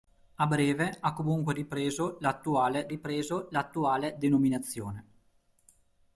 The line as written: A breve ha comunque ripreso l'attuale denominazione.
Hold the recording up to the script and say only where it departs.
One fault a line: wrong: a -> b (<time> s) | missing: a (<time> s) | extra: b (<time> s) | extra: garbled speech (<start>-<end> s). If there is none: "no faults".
extra: ripreso l'attuale (2.9 s)